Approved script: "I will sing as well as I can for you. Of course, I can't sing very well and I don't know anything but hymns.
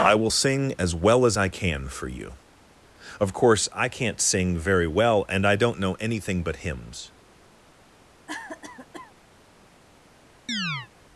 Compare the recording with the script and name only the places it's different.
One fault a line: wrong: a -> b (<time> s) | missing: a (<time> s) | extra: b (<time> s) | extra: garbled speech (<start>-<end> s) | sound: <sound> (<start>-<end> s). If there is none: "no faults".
sound: cough (8.3-9.1 s)
sound: chirp (10.5-10.9 s)